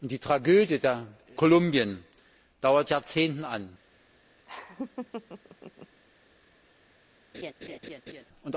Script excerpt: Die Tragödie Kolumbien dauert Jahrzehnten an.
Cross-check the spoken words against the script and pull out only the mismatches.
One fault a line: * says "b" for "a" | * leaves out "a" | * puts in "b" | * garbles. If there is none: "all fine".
all fine